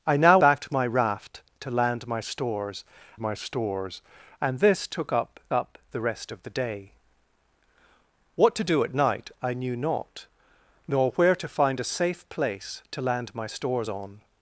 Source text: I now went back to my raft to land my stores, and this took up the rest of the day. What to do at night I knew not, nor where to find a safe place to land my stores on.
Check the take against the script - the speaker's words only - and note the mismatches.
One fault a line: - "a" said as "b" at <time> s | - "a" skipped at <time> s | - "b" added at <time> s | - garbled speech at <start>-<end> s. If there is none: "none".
- "went" skipped at 0.4 s
- "my stores" added at 3.2 s
- "up" added at 5.5 s